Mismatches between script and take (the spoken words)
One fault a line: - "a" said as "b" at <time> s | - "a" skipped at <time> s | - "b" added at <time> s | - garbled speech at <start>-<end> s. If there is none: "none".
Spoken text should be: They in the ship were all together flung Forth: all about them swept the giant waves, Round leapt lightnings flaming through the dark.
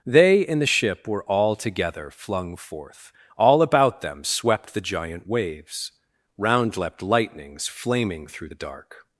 none